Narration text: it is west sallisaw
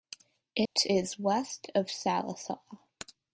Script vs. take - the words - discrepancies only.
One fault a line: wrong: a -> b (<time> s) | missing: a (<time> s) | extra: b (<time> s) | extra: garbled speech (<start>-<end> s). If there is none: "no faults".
extra: of (1.7 s)